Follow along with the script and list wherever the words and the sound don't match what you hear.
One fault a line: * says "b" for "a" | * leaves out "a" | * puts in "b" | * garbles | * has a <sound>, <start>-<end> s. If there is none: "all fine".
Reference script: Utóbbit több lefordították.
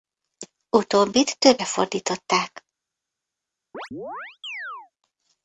* has a chirp, 3.7-4.9 s